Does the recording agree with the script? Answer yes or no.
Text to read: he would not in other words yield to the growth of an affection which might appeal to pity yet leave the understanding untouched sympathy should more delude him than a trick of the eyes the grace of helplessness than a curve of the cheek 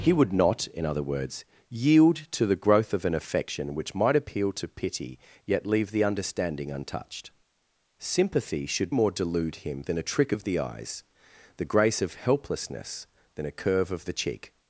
yes